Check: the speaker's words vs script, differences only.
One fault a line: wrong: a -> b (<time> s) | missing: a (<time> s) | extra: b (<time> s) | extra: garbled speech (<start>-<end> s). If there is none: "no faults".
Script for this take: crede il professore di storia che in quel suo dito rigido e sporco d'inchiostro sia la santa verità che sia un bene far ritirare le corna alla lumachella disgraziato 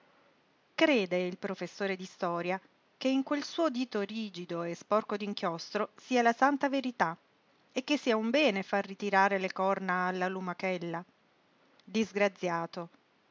extra: e (7.7 s)